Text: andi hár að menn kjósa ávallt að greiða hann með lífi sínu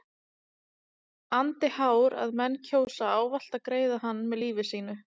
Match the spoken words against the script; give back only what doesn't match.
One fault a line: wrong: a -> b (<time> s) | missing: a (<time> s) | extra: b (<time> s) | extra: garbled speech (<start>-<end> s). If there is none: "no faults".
no faults